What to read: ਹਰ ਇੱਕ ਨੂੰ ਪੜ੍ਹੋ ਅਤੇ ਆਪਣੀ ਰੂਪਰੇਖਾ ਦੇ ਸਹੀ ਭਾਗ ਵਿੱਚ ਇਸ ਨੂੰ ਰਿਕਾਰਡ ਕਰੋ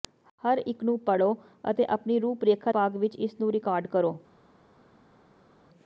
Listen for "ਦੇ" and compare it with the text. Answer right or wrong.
wrong